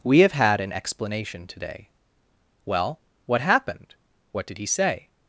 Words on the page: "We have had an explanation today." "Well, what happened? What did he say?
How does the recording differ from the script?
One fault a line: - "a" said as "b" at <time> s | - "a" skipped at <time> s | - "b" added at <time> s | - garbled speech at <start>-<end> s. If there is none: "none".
none